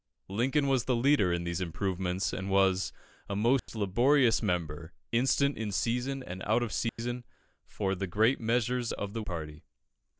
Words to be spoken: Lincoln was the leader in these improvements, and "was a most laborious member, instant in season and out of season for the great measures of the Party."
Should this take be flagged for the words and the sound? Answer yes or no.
yes